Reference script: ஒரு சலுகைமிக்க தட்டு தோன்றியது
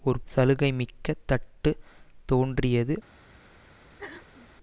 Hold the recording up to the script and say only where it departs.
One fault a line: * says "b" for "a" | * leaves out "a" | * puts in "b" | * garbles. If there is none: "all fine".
all fine